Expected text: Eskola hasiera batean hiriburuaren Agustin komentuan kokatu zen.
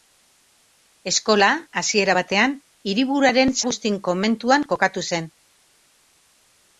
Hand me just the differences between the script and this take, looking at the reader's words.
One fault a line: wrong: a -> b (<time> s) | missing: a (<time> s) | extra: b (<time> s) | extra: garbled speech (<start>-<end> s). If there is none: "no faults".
no faults